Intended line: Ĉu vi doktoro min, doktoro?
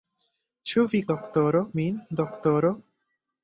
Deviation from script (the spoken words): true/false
false